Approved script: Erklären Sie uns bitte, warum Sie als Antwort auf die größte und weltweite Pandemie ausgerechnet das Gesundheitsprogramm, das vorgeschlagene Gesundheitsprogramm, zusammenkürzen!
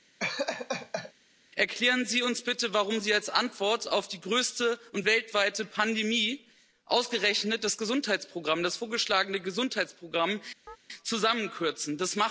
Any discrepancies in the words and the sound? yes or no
yes